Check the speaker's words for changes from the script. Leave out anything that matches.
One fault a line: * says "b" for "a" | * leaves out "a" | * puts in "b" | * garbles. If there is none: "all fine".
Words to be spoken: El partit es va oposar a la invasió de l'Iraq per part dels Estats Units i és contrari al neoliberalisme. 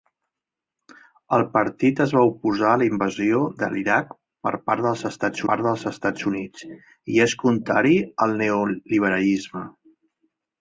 * puts in "part dels Estats"